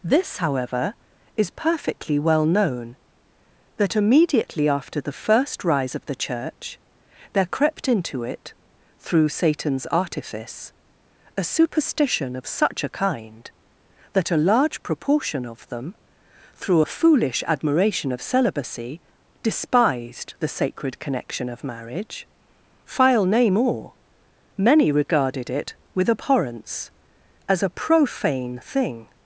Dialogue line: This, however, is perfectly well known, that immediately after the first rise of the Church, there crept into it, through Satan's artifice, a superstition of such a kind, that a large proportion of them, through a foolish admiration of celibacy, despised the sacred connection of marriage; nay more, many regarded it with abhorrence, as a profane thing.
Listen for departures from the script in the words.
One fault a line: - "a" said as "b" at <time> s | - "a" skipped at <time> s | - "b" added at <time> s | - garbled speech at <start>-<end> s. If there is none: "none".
- "file" added at 22.8 s